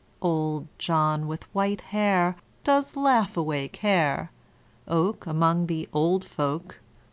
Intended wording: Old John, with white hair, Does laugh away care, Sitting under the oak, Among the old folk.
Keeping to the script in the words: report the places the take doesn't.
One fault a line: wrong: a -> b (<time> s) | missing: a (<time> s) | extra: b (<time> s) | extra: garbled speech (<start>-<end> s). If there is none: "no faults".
missing: Sitting under the (4.3 s)